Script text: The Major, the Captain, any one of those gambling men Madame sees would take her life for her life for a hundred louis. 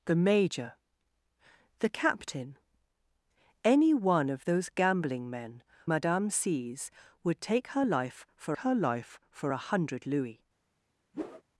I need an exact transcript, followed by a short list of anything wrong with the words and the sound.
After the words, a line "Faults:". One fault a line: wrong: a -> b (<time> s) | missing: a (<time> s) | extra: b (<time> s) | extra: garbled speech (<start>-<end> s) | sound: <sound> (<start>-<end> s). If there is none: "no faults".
The Major, the Captain, any one of those gambling men Madame sees would take her life for her life for a hundred louis.
Faults:
sound: whoosh (11.1-11.4 s)